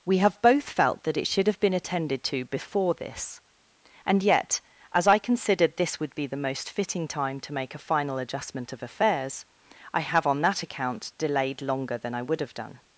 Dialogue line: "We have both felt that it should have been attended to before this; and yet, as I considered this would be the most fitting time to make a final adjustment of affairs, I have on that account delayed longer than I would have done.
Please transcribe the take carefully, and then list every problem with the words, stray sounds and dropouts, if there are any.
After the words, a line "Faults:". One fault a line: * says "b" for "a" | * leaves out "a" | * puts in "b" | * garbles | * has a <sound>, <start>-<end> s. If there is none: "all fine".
"We have both felt that it should have been attended to before this; and yet, as I considered this would be the most fitting time to make a final adjustment of affairs, I have on that account delayed longer than I would have done.
Faults:
all fine